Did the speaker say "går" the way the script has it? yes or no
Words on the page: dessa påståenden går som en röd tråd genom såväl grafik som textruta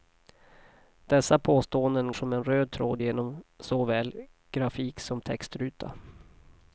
no